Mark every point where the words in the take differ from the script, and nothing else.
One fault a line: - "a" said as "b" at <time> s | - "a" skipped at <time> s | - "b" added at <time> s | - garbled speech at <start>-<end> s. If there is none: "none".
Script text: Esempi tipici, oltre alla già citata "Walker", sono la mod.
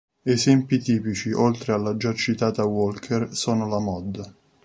none